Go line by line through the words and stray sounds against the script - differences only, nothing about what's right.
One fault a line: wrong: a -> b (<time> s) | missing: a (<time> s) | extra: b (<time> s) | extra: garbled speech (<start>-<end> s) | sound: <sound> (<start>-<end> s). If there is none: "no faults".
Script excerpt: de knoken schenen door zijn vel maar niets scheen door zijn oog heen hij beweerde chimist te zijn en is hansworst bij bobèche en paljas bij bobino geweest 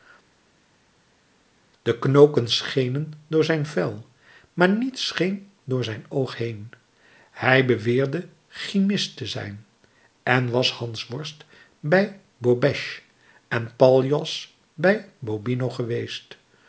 wrong: is -> was (10.5 s)